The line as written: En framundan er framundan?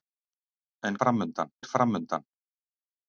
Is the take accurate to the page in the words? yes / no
yes